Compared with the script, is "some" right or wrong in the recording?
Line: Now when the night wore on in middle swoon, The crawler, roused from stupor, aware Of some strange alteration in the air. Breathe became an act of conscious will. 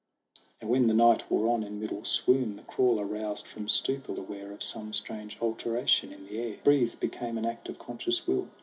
right